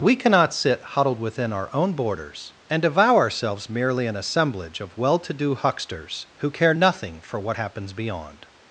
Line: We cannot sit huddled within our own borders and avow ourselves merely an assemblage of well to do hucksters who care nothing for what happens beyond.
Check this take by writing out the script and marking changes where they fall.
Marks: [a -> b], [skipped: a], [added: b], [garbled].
We cannot sit huddled within our own borders and avow ourselves merely an assemblage of well to do hucksters who care nothing for what happens beyond.